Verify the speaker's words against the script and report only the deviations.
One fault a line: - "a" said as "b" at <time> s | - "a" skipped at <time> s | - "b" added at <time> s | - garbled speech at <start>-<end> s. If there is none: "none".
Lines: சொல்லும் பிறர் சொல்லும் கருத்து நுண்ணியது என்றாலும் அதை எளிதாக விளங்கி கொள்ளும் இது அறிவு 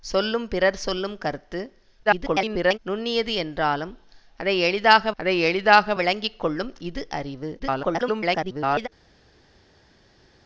- garbled speech at 2.1-2.8 s
- "அதை எளிதாக" added at 5.2 s
- garbled speech at 7.6-8.9 s